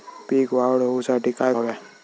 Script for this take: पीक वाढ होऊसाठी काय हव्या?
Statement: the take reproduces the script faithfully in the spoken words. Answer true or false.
true